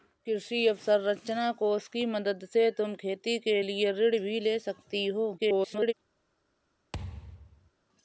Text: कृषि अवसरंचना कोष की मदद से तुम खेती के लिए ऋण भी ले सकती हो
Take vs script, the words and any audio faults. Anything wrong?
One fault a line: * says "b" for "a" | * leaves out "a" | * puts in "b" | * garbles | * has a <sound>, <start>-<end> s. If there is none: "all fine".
* garbles
* has a thud, 6.9-7.7 s